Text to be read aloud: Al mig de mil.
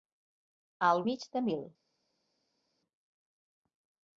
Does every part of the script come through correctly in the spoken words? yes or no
yes